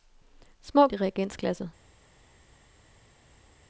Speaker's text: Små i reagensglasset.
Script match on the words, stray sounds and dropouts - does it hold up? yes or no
yes